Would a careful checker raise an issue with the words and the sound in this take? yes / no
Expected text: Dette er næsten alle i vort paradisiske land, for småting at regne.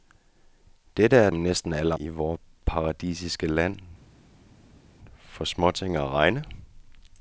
no